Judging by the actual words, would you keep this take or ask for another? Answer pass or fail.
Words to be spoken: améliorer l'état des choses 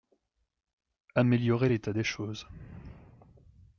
pass